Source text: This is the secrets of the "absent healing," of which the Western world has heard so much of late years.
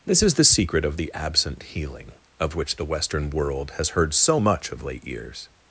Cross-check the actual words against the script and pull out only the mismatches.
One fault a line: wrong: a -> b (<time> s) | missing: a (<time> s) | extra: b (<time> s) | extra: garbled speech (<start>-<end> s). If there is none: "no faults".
wrong: secrets -> secret (0.4 s)